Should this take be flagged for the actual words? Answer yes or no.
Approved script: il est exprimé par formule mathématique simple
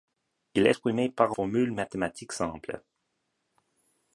no